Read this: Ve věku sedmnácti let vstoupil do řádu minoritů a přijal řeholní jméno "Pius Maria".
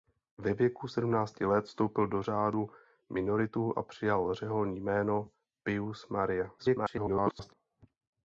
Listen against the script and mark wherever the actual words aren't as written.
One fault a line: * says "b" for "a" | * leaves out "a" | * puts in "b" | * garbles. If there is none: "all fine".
* garbles